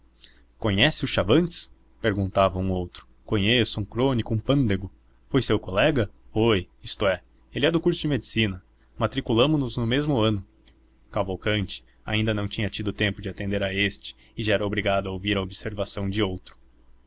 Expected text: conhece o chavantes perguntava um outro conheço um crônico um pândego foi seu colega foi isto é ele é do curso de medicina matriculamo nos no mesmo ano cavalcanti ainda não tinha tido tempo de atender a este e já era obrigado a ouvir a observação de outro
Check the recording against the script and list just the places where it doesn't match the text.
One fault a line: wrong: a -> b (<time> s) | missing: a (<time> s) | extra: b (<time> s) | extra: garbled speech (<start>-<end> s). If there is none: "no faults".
no faults